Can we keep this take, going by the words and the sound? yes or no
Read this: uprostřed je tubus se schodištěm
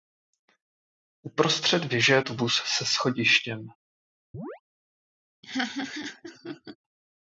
no